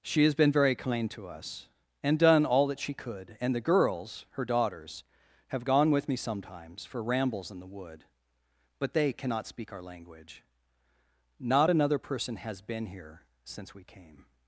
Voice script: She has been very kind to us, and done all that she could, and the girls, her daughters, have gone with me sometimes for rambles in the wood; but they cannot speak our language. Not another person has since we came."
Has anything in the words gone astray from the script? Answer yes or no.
yes